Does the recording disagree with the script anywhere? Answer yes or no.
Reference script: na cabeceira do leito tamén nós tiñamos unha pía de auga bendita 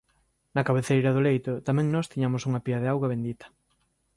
no